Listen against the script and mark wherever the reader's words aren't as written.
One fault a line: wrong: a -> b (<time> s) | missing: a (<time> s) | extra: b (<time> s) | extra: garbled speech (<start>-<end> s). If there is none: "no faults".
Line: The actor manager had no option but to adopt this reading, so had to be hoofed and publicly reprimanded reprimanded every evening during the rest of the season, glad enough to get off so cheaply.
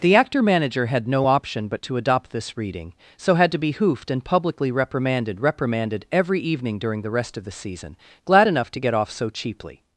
no faults